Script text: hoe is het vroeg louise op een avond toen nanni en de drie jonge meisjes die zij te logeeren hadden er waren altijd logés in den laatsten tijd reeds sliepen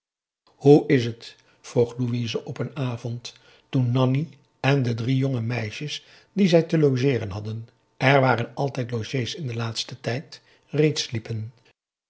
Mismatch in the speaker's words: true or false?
false